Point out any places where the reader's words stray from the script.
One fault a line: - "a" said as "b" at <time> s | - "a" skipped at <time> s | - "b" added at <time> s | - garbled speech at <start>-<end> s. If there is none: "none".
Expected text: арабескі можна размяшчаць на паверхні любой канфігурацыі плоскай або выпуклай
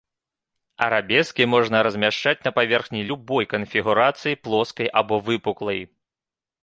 none